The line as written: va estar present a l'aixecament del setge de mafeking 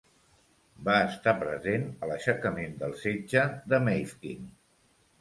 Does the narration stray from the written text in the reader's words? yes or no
no